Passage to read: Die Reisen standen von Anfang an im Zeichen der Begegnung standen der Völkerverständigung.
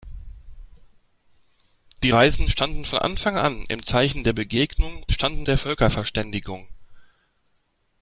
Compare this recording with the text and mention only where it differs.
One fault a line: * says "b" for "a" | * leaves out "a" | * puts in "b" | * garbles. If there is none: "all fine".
all fine